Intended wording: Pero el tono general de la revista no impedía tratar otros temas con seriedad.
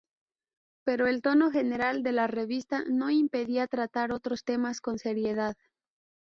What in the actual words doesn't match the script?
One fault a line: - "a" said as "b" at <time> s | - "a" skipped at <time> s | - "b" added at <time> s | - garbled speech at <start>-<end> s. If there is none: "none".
none